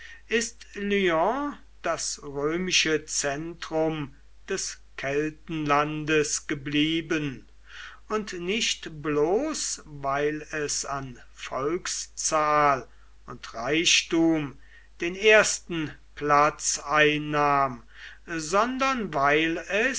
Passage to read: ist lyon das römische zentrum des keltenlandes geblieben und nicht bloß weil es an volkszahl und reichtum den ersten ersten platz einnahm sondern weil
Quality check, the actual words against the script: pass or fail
fail